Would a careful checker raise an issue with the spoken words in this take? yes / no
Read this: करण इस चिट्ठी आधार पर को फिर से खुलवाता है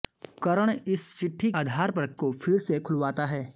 no